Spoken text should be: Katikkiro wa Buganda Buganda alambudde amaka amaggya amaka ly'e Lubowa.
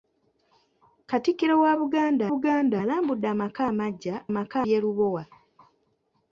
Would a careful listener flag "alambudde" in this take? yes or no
no